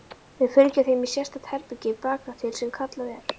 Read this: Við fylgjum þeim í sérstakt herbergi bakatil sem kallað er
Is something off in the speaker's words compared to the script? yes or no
no